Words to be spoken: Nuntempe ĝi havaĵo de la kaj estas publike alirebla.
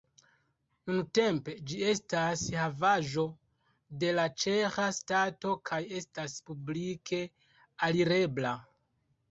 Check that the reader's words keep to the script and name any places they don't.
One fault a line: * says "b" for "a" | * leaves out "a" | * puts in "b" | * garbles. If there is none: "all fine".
* puts in "estas"
* puts in "ĉeĥa stato"